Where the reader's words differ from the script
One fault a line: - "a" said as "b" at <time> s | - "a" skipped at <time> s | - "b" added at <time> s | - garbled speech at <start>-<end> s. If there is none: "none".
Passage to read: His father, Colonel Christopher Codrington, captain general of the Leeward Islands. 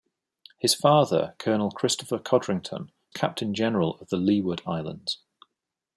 none